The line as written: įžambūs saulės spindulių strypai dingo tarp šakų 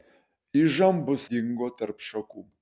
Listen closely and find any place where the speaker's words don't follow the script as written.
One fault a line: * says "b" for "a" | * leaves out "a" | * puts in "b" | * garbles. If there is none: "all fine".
* leaves out "saulės spindulių strypai"